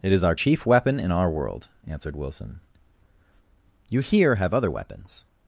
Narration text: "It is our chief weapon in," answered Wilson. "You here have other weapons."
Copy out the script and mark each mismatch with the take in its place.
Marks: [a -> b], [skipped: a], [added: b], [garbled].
"It is our chief weapon in," [added: our world] answered Wilson. "You here have other weapons."